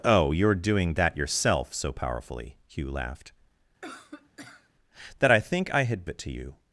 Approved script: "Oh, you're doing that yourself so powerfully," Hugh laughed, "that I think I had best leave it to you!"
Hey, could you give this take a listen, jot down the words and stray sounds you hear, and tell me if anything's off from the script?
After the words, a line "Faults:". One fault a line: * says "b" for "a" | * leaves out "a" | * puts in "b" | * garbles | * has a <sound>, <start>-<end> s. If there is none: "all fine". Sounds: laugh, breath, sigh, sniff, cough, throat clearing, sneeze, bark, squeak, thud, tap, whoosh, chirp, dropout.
"Oh, you're doing that yourself so powerfully," Hugh laughed, "that I think I had it to you!"
Faults:
* has a cough, 3.8-4.7 s
* leaves out "best leave"